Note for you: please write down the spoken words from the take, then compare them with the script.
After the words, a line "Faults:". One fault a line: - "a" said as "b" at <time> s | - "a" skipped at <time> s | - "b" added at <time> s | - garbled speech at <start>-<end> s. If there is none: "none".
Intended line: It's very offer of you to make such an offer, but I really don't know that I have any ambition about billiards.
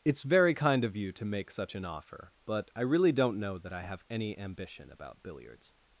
It's very kind of you to make such an offer, but I really don't know that I have any ambition about billiards.
Faults:
- "offer" said as "kind" at 0.6 s